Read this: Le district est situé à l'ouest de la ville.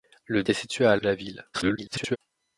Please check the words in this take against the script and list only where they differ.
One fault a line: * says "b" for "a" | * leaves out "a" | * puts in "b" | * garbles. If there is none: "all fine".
* leaves out "district"
* leaves out "l'ouest"
* garbles